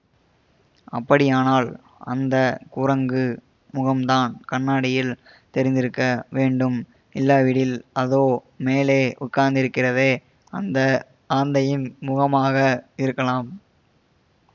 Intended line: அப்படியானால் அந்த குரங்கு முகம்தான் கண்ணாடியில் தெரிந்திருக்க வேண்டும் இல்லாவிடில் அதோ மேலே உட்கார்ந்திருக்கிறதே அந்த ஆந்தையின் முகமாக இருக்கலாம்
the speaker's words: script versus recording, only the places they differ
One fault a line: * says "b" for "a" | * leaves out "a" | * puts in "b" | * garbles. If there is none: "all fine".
all fine